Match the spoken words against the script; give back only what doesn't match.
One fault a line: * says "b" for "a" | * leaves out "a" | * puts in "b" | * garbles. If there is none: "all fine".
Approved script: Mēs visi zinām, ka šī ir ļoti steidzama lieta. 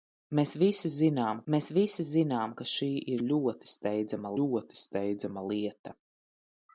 * puts in "mēs visi zinām"
* puts in "ļoti steidzama"